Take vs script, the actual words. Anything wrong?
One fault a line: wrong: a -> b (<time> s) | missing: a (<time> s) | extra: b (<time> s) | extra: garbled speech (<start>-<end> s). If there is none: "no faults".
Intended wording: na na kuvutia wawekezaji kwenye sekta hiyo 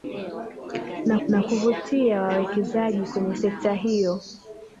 no faults